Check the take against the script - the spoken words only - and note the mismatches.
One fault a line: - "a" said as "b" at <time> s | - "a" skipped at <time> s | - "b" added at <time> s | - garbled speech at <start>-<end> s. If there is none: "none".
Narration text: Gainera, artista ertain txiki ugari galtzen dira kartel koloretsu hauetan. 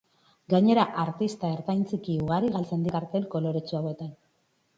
- "dira" skipped at 2.9 s